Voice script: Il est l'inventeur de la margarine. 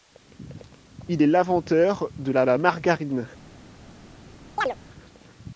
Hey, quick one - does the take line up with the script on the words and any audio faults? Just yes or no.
no